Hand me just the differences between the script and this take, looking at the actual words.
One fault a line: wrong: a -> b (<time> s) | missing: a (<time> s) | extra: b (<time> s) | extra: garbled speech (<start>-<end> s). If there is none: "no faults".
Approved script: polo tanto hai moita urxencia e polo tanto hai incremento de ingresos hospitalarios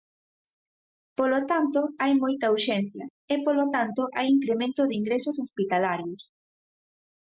no faults